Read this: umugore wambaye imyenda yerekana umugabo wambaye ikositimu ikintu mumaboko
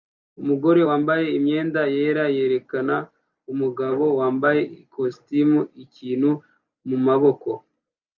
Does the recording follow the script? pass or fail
fail